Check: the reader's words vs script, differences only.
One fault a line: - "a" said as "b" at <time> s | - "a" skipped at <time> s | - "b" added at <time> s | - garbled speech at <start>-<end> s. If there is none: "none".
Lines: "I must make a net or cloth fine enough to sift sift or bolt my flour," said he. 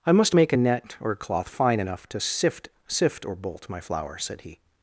none